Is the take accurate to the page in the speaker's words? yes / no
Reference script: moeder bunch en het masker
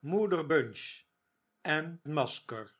no